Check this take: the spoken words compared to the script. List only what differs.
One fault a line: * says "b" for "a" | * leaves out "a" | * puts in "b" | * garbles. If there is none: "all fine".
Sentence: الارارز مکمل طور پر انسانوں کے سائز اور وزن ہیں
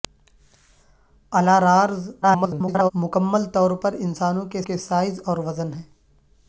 * garbles
* puts in "کے"